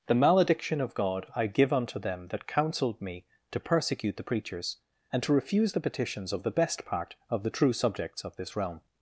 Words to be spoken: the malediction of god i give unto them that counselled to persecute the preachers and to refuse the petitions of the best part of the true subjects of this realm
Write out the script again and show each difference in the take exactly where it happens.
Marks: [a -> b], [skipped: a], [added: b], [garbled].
the malediction of god i give unto them that counselled [added: me] to persecute the preachers and to refuse the petitions of the best part of the true subjects of this realm